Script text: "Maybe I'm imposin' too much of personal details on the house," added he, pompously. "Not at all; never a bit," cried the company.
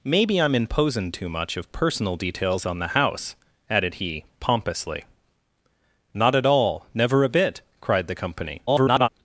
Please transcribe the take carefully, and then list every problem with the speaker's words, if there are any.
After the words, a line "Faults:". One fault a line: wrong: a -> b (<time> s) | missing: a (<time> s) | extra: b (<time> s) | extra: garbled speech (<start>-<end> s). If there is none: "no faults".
"Maybe I'm imposin' too much of personal details on the house," added he, pompously. "Not at all; never a bit," cried the company. [garbled]
Faults:
extra: garbled speech (8.7-9.1 s)